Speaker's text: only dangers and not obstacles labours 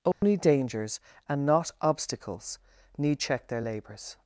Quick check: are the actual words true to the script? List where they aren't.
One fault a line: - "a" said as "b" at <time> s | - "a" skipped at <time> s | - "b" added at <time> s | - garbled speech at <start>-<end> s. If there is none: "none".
- "need check their" added at 3.0 s